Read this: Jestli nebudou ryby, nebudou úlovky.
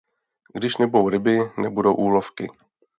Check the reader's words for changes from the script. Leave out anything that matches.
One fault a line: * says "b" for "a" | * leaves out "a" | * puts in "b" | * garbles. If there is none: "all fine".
* says "Když" for "Jestli"